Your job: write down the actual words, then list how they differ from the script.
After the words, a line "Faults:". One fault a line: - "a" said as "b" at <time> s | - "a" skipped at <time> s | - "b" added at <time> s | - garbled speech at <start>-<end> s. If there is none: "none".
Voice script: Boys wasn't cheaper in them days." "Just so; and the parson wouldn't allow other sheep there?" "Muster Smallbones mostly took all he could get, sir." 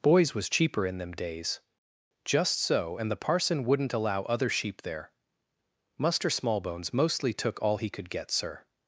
Boys was cheaper in them days." "Just so; and the parson wouldn't allow other sheep there?" "Muster Smallbones mostly took all he could get, sir."
Faults:
- "wasn't" said as "was" at 0.3 s